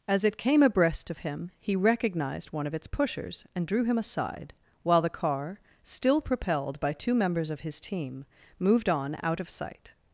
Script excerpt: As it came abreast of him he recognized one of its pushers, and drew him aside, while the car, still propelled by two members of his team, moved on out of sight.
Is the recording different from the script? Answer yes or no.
no